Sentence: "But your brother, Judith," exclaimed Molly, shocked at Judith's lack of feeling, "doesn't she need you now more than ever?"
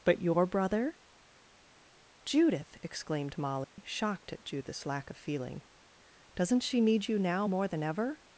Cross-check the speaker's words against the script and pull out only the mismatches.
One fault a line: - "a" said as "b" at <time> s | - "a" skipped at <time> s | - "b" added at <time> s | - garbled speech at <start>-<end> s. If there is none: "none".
none